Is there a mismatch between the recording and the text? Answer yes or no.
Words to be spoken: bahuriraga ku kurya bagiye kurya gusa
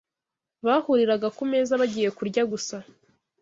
yes